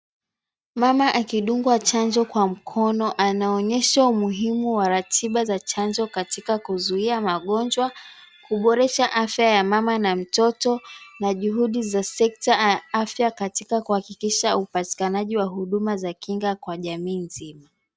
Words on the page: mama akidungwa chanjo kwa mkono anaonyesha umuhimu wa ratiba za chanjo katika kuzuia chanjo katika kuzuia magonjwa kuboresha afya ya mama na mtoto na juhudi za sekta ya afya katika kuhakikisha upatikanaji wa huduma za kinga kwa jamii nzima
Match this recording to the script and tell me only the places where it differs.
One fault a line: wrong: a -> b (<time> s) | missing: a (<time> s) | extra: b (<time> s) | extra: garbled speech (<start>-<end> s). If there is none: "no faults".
missing: chanjo katika kuzuia (7.2 s)